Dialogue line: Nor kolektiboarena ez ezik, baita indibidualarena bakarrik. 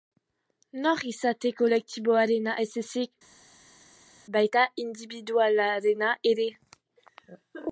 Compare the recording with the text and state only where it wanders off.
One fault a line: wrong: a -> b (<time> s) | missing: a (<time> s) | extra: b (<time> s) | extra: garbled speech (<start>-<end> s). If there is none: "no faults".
extra: izate (1.1 s)
wrong: bakarrik -> ere (6.3 s)